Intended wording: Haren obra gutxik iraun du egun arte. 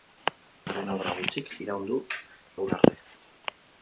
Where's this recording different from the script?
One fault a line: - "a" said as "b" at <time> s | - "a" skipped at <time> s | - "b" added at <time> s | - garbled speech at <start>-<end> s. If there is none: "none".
none